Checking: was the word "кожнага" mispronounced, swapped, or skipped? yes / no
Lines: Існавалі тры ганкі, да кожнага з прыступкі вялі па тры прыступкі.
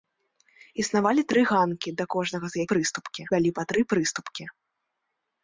no